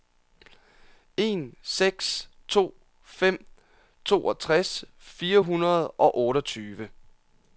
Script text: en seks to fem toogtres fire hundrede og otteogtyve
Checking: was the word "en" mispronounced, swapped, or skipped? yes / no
no